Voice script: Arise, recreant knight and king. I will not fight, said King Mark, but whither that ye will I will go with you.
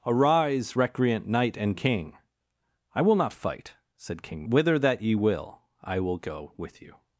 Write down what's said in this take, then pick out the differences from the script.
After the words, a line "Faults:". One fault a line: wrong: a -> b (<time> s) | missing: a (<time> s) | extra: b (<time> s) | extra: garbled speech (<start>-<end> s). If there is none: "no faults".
Arise, recreant knight and king. I will not fight, said King Whither that ye will I will go with you.
Faults:
missing: Mark but (4.4 s)